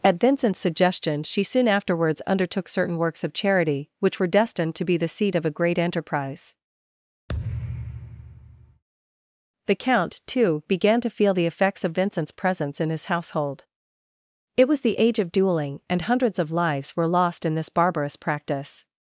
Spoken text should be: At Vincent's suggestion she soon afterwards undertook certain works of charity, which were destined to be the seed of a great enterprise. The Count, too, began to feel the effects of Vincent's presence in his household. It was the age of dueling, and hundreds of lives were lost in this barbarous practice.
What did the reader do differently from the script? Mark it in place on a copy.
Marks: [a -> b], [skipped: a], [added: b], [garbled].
At Vincent's suggestion she soon afterwards undertook certain works of charity, which were destined to be the seed of a great enterprise. The Count, too, began to feel the effects of Vincent's presence in his household. It was the age of dueling, and hundreds of lives were lost in this barbarous practice.